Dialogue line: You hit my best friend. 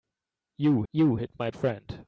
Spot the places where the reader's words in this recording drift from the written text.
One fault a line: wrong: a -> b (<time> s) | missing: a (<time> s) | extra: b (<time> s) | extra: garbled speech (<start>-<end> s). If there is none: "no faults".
extra: you (0.9 s)
missing: best (1.5 s)